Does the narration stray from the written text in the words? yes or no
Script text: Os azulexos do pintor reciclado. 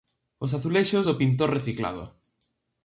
no